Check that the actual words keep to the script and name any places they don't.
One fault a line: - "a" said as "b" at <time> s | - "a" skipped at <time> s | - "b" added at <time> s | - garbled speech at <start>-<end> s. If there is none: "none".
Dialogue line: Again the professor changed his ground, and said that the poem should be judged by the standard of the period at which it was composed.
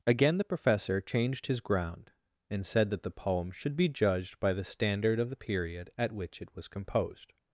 none